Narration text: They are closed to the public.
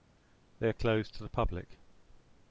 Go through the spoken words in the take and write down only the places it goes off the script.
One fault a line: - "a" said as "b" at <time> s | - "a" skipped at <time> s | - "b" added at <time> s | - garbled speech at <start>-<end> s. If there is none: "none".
none